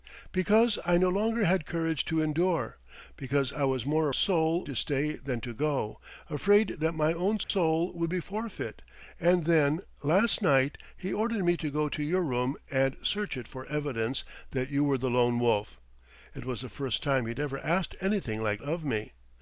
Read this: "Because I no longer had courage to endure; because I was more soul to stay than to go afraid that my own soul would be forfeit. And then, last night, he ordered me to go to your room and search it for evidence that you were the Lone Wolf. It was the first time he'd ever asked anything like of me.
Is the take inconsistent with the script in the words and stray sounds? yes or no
yes